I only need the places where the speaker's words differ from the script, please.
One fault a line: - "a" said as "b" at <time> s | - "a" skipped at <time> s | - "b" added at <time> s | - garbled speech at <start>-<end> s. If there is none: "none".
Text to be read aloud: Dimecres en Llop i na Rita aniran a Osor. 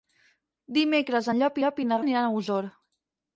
- "Llop" added at 1.6 s
- "Rita" skipped at 2.0 s